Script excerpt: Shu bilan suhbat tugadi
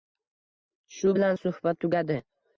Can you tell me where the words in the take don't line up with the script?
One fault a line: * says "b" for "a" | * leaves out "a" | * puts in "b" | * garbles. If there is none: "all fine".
all fine